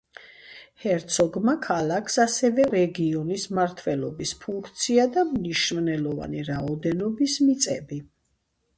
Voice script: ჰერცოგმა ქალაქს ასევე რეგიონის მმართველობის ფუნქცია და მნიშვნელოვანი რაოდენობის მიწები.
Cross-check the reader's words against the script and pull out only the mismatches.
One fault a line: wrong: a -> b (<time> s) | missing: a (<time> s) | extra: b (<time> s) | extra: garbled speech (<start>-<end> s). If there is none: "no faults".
no faults